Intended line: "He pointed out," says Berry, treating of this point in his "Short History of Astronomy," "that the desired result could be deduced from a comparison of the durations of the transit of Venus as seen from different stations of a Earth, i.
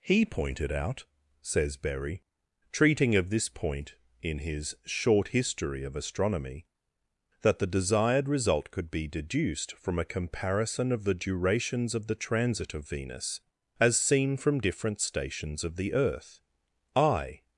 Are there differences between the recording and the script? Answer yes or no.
yes